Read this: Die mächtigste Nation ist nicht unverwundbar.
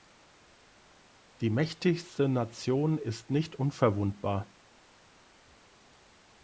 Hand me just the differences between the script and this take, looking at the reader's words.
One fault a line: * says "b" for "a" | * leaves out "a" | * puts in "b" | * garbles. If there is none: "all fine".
all fine